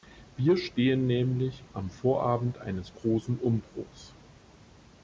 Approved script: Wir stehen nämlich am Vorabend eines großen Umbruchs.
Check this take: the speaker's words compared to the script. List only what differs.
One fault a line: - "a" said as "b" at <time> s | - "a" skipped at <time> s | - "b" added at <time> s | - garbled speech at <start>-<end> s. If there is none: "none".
none